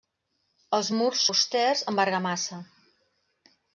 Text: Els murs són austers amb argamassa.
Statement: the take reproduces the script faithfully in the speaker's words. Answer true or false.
false